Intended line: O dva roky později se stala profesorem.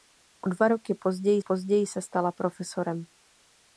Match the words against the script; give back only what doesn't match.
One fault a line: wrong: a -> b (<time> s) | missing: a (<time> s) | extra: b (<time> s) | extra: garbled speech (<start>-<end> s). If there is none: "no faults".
extra: později (1.4 s)